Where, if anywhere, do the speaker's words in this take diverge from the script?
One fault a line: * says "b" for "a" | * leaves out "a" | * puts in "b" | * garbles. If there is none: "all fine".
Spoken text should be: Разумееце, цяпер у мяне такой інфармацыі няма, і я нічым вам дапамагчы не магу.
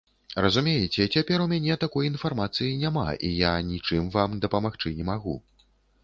all fine